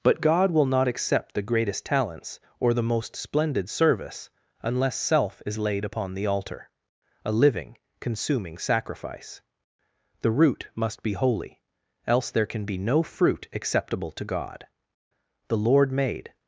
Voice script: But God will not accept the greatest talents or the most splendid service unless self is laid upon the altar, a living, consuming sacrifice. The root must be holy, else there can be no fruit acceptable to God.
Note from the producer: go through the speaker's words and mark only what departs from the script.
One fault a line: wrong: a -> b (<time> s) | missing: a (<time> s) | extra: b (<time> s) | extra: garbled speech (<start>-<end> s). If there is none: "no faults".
extra: The Lord made (15.5 s)